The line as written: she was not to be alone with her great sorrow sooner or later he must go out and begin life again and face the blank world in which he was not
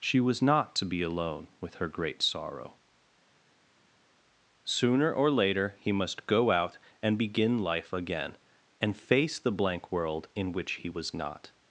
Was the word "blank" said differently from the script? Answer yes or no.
no